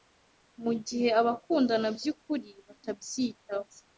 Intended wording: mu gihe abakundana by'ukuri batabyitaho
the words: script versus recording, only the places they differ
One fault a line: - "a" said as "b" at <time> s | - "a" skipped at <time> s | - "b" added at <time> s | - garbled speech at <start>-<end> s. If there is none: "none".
none